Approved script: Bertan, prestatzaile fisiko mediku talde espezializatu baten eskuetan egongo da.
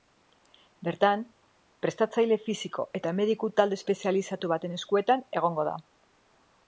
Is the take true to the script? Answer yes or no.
no